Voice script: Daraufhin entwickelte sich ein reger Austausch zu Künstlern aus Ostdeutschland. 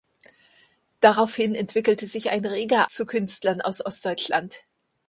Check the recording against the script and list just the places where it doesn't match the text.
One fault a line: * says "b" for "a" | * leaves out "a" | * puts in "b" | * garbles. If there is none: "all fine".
* leaves out "Austausch"